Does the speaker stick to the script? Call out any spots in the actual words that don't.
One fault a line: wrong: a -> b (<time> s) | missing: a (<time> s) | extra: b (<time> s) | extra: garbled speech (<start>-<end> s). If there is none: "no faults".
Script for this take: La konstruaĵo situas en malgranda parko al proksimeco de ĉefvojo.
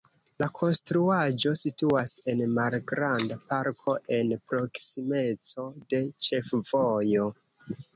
wrong: al -> en (4.2 s)